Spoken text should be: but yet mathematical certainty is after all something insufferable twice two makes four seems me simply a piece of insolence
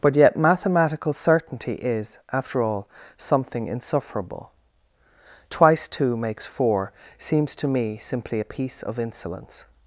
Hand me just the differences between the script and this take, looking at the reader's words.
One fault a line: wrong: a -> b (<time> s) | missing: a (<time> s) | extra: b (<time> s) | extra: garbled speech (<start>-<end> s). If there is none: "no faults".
extra: to (7.6 s)